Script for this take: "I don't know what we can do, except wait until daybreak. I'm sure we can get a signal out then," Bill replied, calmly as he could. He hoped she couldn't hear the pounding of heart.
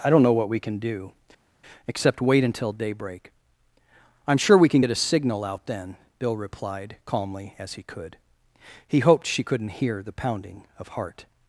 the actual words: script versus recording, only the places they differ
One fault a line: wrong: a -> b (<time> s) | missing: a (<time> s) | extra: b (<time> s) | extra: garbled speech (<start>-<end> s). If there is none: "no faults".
no faults